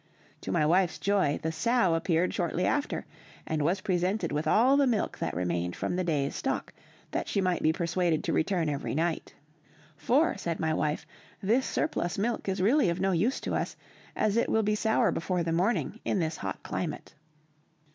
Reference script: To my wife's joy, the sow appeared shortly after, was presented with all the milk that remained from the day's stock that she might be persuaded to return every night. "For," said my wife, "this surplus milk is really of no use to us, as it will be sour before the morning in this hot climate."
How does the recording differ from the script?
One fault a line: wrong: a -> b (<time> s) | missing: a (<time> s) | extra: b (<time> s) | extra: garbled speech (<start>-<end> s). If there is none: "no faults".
extra: and (3.4 s)